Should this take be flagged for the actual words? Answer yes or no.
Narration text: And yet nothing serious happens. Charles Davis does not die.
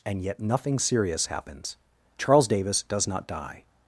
no